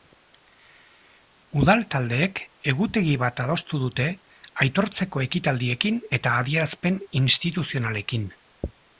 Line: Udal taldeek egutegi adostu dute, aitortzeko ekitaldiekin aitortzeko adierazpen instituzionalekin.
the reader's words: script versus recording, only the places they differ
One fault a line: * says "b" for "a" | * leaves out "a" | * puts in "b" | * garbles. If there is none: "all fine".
* puts in "bat"
* says "eta" for "aitortzeko"